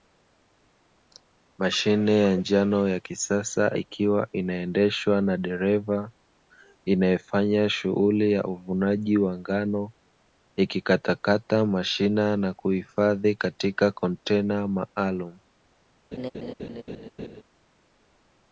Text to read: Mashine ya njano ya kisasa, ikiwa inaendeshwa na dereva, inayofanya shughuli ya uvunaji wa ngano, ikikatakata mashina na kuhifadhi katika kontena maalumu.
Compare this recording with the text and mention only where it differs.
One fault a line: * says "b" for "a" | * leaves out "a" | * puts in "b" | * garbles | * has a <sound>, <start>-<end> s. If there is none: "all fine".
* has a laugh, 16.1-17.4 s